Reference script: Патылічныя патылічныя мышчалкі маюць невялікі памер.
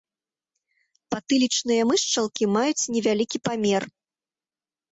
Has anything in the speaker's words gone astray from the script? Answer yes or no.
yes